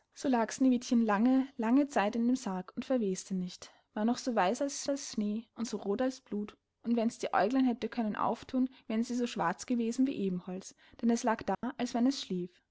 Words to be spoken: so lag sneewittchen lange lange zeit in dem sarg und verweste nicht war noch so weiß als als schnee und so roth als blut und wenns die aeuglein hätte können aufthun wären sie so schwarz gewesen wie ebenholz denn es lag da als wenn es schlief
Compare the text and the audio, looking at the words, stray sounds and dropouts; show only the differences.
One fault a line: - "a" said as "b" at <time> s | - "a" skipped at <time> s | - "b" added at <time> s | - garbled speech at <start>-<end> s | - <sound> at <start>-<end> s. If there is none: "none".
- dropout at 11.5-11.6 s